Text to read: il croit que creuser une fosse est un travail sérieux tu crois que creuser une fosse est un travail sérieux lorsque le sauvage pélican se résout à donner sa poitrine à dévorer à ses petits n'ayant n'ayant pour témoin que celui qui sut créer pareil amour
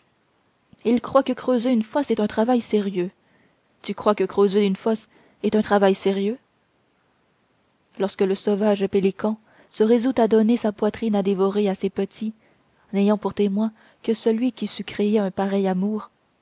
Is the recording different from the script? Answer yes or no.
yes